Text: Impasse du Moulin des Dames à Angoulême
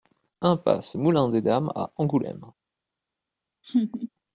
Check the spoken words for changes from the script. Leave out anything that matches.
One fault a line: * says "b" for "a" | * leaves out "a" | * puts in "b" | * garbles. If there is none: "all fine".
* leaves out "du"